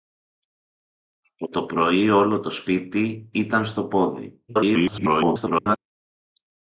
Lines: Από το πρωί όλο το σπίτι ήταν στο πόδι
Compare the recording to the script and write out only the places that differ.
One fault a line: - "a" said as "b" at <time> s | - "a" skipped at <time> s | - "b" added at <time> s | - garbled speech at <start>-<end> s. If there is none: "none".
- garbled speech at 4.5-5.8 s